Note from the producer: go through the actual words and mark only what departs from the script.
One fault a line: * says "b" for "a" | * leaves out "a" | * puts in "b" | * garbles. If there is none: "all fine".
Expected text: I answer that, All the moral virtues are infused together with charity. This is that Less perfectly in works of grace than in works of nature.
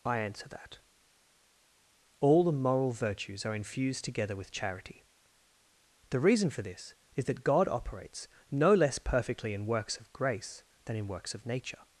* puts in "The reason for"
* puts in "God operates no"